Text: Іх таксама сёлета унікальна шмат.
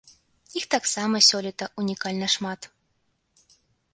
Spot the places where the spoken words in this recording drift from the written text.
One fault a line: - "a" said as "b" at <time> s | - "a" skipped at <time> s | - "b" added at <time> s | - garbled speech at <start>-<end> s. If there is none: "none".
none